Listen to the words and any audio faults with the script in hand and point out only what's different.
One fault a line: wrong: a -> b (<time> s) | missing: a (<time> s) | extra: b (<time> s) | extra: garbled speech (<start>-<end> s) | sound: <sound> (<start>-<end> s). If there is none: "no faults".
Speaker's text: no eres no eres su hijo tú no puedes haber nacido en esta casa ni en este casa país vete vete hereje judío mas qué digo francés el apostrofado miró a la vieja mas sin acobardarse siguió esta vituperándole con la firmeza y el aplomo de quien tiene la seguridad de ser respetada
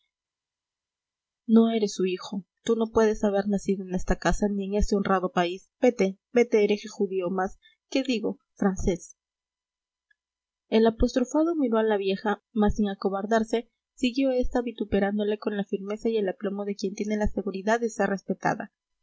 missing: no eres (1.9 s)
wrong: casa -> honrado (5.0 s)